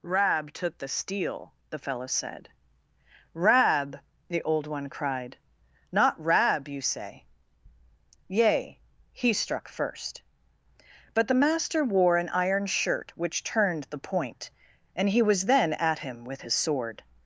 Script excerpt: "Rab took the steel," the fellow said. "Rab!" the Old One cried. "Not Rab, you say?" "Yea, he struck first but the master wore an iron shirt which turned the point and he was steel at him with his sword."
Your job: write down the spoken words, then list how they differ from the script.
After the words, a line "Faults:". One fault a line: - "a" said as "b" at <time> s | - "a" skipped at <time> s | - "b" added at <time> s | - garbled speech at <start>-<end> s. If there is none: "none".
"Rab took the steel," the fellow said. "Rab!" the Old One cried. "Not Rab, you say?" "Yea, he struck first but the master wore an iron shirt which turned the point and he was then at him with his sword."
Faults:
- "steel" said as "then" at 15.4 s